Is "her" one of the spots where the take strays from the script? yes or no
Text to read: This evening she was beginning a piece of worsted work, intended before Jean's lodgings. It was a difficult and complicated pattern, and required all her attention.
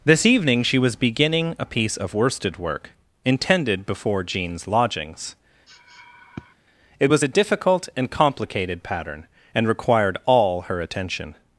no